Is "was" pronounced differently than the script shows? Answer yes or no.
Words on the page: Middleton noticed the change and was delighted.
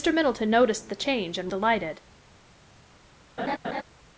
yes